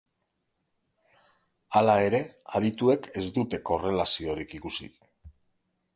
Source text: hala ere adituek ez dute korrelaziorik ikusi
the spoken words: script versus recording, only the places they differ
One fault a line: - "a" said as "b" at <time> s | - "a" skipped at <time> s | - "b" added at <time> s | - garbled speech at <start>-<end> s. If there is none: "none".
none